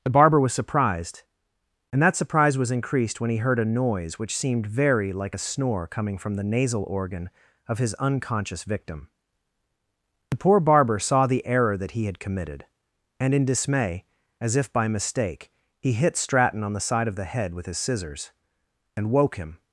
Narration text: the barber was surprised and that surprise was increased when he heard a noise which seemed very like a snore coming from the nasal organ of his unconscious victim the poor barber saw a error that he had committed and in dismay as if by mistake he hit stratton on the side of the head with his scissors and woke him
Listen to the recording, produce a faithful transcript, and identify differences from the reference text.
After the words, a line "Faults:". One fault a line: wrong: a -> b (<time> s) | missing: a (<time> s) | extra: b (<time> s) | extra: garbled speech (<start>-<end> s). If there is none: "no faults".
the barber was surprised and that surprise was increased when he heard a noise which seemed very like a snore coming from the nasal organ of his unconscious victim the poor barber saw the error that he had committed and in dismay as if by mistake he hit stratton on the side of the head with his scissors and woke him
Faults:
wrong: a -> the (11.3 s)